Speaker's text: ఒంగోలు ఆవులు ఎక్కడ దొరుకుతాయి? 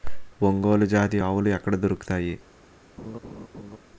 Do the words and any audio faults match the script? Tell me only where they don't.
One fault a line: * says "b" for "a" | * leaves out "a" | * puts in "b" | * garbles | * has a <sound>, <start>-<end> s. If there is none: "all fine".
* puts in "జాతి"
* has a laugh, 3.0-3.8 s